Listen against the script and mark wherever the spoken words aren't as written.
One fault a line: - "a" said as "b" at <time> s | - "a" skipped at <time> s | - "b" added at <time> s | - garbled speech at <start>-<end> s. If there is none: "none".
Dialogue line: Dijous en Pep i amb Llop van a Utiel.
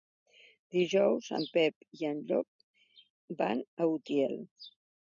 - "amb" said as "en" at 2.1 s